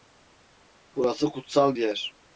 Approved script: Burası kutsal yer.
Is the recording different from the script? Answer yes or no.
no